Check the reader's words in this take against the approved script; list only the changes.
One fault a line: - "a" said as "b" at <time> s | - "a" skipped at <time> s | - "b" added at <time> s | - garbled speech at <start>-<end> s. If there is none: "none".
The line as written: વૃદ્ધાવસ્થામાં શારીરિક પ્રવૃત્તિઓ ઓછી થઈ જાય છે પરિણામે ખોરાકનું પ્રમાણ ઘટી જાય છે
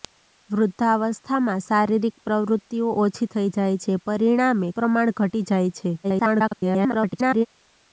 - "ખોરાકનું" skipped at 4.7 s
- garbled speech at 6.0-7.5 s